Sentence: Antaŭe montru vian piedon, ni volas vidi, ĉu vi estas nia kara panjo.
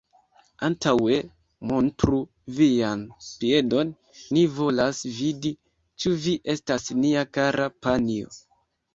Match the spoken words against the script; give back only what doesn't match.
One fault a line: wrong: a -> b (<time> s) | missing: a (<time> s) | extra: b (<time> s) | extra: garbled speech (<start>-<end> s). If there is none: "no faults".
no faults